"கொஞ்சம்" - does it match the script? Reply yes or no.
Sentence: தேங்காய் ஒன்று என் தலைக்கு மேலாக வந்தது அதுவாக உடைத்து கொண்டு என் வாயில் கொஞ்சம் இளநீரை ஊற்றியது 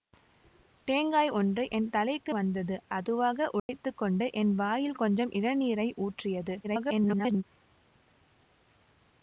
yes